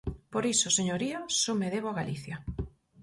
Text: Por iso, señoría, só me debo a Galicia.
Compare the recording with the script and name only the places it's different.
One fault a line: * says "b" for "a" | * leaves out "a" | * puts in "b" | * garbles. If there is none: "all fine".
all fine